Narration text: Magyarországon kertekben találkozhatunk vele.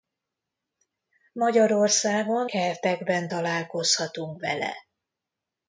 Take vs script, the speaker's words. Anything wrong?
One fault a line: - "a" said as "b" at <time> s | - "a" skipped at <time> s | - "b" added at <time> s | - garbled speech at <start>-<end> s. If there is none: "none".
none